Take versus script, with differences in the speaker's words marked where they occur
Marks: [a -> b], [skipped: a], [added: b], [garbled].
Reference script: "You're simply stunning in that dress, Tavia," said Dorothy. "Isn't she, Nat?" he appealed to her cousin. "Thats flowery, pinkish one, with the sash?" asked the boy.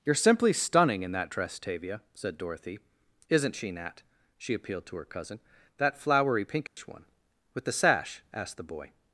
"You're simply stunning in that dress, Tavia," said Dorothy. "Isn't she, Nat?" [he -> she] appealed to her cousin. ["Thats -> That] flowery, pinkish one, with the sash?" asked the boy.